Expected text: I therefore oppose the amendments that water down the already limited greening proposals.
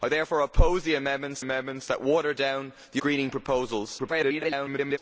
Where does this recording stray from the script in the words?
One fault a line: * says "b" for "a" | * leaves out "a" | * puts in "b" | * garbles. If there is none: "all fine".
* puts in "amendments"
* leaves out "already limited"
* garbles